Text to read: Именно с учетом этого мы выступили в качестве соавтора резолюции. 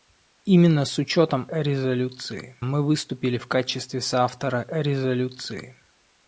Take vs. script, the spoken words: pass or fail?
fail